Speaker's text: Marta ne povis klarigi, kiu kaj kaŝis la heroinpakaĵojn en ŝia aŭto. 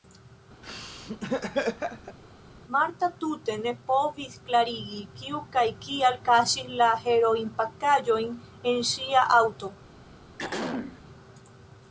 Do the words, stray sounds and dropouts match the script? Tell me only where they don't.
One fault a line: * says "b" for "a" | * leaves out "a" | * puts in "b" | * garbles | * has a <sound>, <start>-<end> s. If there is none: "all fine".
* has a laugh, 0.6-2.2 s
* puts in "tute"
* puts in "kial"
* has a throat clearing, 10.4-11.0 s